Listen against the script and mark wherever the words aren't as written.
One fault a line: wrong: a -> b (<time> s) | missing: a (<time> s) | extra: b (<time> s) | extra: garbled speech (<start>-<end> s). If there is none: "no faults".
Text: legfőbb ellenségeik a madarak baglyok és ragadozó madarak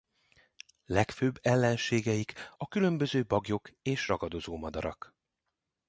wrong: madarak -> különböző (2.7 s)